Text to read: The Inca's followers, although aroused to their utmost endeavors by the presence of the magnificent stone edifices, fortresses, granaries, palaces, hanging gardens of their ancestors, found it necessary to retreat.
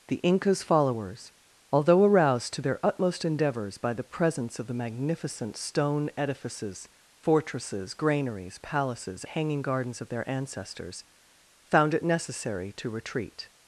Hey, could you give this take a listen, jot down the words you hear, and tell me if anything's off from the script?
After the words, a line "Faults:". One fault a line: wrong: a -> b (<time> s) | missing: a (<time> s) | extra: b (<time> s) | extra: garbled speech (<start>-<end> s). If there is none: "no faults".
The Inca's followers, although aroused to their utmost endeavors by the presence of the magnificent stone edifices, fortresses, granaries, palaces, hanging gardens of their ancestors, found it necessary to retreat.
Faults:
no faults